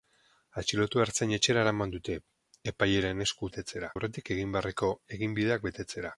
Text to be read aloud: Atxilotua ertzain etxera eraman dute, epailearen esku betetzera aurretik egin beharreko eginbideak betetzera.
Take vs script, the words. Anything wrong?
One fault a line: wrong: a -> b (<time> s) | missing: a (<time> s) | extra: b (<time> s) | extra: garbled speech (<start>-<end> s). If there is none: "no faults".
no faults